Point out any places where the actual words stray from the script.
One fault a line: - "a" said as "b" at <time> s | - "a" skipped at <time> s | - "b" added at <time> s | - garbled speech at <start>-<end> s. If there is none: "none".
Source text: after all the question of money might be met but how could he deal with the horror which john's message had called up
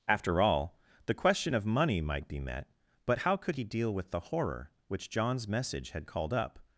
none